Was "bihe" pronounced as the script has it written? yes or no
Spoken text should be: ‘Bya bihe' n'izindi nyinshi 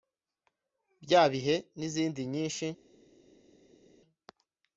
yes